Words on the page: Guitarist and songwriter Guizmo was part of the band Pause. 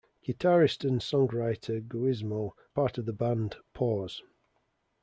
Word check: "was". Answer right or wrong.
wrong